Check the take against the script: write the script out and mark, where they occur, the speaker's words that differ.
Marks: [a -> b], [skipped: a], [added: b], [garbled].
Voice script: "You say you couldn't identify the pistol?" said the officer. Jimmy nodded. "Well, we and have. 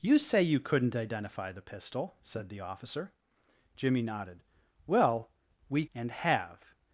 "You say you couldn't identify the pistol?" said the officer. Jimmy nodded. "Well, we and have.